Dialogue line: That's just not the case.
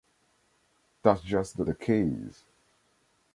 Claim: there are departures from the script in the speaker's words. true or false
true